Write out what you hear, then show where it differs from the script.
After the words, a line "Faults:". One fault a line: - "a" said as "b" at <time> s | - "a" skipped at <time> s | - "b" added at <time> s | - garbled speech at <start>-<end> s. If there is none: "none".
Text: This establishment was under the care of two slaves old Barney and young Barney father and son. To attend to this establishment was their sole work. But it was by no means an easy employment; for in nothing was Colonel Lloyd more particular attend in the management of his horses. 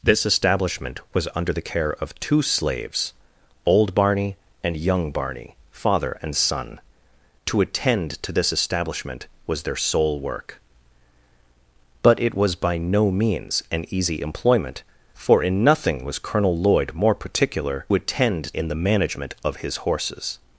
This establishment was under the care of two slaves old Barney and young Barney father and son. To attend to this establishment was their sole work. But it was by no means an easy employment; for in nothing was Colonel Lloyd more particular attend in the management of his horses.
Faults:
none